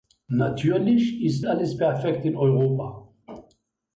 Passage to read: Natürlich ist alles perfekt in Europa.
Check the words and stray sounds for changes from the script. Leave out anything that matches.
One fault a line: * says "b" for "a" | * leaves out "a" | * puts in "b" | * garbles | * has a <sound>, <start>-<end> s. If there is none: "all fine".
all fine